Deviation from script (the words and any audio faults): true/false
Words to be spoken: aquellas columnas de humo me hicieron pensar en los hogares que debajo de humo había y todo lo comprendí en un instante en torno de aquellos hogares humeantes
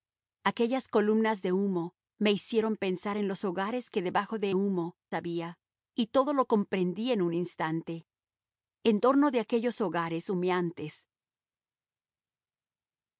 false